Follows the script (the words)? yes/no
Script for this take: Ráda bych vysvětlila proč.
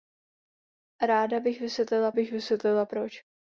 no